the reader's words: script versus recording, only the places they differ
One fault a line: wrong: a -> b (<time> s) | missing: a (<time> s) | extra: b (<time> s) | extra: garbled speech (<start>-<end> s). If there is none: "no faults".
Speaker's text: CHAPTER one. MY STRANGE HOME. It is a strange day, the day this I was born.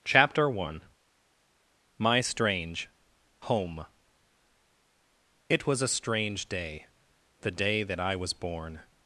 wrong: is -> was (5.7 s)
wrong: this -> that (7.8 s)